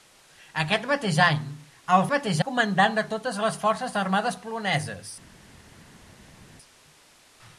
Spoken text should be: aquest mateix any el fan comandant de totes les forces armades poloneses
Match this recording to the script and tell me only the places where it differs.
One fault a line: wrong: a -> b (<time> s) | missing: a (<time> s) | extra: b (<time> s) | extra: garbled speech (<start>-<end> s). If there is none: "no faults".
wrong: fan -> mateix (2.1 s)